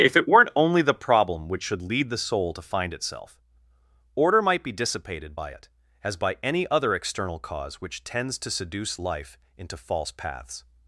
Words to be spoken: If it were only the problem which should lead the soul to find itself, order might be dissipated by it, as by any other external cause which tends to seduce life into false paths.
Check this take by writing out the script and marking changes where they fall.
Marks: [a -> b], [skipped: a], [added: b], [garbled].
If it [were -> weren't] only the problem which should lead the soul to find itself, order might be dissipated by it, as by any other external cause which tends to seduce life into false paths.